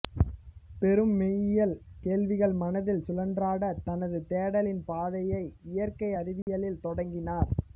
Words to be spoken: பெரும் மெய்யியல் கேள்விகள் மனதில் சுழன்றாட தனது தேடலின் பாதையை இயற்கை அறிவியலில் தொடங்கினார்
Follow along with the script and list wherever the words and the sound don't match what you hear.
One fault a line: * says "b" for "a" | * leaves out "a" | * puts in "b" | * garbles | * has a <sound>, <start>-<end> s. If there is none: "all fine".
* has a dropout, 6.4-6.5 s